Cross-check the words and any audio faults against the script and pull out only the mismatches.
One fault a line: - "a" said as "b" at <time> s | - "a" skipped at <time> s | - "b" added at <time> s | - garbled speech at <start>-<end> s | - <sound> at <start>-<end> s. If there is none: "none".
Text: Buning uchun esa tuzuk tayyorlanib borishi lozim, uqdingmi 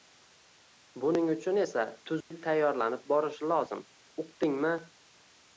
- dropout at 2.2-2.3 s